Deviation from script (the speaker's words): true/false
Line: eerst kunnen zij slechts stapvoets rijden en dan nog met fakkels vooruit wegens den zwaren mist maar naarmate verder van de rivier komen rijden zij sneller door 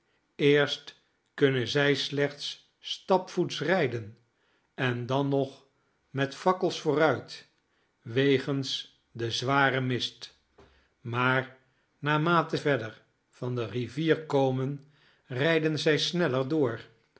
false